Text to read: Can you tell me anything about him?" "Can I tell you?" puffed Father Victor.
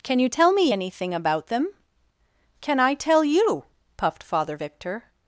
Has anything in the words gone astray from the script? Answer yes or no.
yes